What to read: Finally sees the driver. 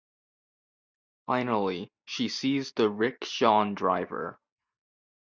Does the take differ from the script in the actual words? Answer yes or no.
yes